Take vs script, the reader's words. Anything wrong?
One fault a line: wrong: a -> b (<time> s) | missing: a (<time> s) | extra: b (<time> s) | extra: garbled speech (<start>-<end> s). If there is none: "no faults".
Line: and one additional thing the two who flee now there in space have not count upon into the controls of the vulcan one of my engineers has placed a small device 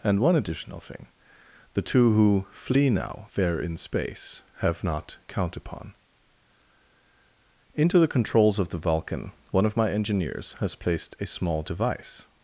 no faults